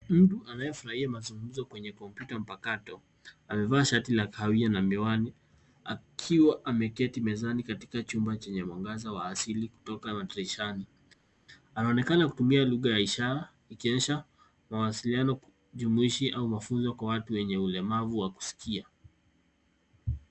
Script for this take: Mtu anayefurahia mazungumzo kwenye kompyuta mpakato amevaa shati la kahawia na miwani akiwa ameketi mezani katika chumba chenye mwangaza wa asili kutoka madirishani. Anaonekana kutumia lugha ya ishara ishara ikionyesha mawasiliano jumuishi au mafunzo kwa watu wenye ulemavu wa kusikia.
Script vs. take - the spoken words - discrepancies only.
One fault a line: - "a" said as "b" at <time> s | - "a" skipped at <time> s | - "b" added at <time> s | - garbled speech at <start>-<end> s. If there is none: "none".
- "ishara" skipped at 13.5 s